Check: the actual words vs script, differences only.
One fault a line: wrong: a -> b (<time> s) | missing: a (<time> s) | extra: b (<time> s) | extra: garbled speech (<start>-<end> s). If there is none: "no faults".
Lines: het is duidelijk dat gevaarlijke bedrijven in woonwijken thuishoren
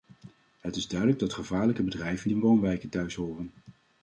no faults